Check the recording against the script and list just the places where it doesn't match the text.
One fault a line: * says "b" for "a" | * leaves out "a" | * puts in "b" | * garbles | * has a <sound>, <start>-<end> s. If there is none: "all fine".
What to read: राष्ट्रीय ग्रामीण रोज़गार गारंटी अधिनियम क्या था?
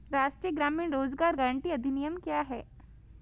* says "है" for "था"